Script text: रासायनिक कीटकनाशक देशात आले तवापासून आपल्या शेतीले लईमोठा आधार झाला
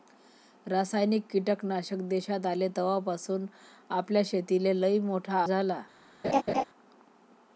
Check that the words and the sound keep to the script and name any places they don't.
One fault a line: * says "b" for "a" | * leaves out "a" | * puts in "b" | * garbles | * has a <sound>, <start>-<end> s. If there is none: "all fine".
* leaves out "आधार"
* has a laugh, 6.2-6.6 s